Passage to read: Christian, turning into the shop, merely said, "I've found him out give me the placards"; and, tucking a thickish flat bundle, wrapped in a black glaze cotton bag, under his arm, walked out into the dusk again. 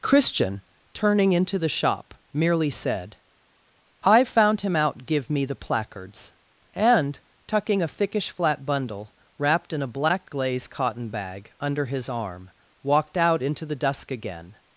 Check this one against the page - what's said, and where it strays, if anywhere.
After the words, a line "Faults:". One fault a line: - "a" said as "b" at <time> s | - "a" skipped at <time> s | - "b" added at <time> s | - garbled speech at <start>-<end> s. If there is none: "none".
Christian, turning into the shop, merely said, "I've found him out give me the placards"; and, tucking a thickish flat bundle, wrapped in a black glaze cotton bag, under his arm, walked out into the dusk again.
Faults:
none